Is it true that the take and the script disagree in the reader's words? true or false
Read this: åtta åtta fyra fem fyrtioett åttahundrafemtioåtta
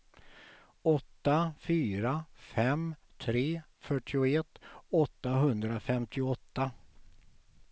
true